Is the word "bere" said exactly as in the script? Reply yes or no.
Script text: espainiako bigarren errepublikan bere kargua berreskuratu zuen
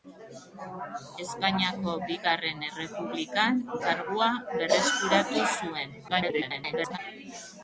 no